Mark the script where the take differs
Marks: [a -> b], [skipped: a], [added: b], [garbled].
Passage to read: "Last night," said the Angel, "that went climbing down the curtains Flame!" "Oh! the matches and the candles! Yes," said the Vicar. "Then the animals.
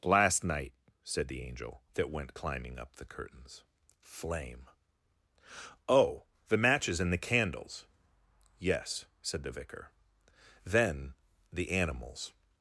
"Last night," said the Angel, "that went climbing [down -> up] the curtains Flame!" "Oh! the matches and the candles! Yes," said the Vicar. "Then the animals.